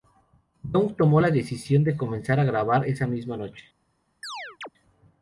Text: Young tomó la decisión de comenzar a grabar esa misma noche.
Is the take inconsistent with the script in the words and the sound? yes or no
yes